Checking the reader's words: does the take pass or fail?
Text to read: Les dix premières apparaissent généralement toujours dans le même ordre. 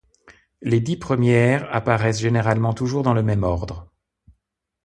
pass